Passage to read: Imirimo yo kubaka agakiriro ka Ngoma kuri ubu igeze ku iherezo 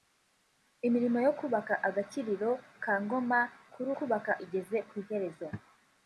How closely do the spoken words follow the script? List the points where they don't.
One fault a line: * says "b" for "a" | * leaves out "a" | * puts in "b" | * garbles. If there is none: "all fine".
* says "kubaka" for "ubu"